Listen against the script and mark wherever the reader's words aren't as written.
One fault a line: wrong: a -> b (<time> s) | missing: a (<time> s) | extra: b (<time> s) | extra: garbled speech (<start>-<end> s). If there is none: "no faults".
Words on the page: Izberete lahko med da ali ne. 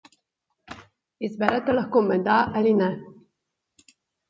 no faults